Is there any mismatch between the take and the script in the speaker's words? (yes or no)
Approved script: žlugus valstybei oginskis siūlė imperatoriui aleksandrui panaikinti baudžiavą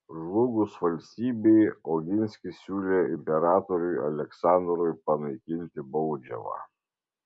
no